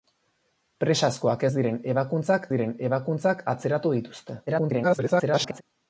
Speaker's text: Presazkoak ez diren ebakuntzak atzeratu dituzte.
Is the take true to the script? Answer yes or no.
no